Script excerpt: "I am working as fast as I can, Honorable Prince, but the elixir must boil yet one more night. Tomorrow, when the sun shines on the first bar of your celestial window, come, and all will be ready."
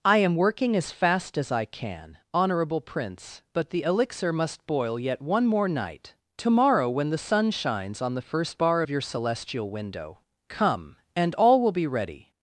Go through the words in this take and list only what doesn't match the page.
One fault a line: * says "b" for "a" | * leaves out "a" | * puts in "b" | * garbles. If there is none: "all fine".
all fine